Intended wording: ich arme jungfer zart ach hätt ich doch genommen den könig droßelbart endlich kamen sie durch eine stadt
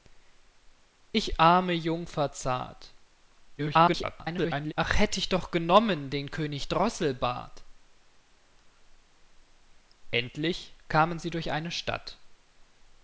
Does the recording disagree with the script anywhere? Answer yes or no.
yes